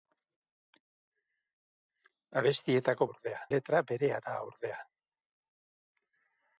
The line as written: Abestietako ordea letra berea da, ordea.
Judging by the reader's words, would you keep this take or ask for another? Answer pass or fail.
pass